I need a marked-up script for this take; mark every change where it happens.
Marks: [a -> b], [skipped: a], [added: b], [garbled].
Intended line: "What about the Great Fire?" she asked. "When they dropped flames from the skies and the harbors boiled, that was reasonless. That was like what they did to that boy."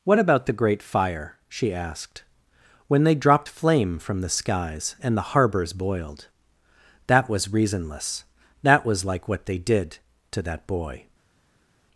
"What about the Great Fire?" she asked. "When they dropped [flames -> flame] from the skies and the harbors boiled, that was reasonless. That was like what they did to that boy."